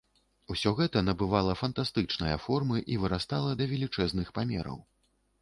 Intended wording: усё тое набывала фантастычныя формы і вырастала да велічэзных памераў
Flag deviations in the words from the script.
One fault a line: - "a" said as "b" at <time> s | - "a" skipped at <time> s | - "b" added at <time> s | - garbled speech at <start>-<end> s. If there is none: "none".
- "тое" said as "гэта" at 0.8 s